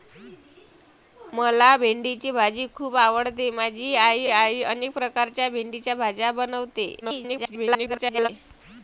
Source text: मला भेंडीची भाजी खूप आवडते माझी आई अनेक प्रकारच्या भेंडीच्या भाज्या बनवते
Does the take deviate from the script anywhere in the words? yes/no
yes